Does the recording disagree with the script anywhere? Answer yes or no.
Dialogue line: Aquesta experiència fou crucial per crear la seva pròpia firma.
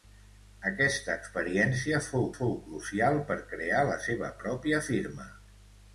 yes